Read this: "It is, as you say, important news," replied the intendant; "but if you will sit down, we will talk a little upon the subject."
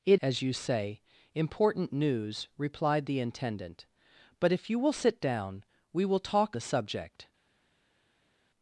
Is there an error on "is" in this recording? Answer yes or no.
yes